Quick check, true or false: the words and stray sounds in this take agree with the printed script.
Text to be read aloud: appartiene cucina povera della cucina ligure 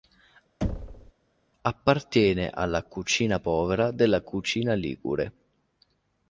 false